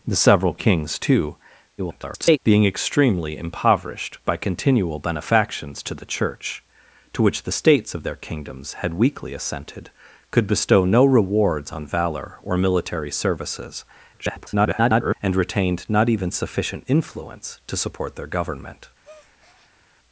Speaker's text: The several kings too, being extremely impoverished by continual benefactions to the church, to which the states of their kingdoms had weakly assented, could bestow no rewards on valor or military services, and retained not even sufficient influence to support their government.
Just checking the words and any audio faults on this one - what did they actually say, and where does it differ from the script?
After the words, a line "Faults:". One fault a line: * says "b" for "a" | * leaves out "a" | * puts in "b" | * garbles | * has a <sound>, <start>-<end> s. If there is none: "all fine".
The several kings too, [garbled] being extremely impoverished by continual benefactions to the church, to which the states of their kingdoms had weakly assented, could bestow no rewards on valor or military services, [garbled] and retained not even sufficient influence to support their government.
Faults:
* garbles
* garbles
* has a breath, 19.0-19.8 s